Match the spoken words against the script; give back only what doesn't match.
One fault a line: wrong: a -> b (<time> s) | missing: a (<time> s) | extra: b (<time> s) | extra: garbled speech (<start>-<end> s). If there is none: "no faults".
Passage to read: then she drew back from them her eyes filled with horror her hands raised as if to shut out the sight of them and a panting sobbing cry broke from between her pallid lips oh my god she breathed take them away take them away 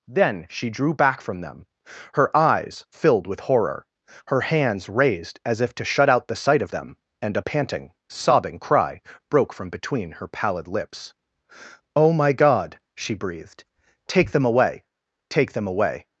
no faults